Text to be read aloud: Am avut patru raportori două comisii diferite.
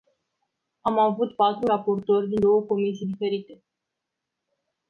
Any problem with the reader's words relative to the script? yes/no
yes